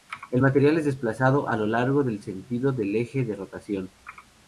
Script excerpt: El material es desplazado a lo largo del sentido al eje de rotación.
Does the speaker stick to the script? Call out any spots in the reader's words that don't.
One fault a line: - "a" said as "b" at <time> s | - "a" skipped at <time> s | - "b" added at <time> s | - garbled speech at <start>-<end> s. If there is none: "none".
- "al" said as "del" at 2.7 s